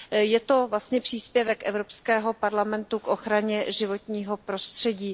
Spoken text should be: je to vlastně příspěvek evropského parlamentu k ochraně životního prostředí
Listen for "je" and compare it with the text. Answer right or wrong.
right